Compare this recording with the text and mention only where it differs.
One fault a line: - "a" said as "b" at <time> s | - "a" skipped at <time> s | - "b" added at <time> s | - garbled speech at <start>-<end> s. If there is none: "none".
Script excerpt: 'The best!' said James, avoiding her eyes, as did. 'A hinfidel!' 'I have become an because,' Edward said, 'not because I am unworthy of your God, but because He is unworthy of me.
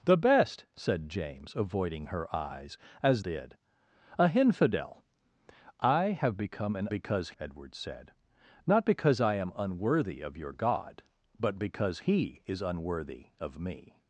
none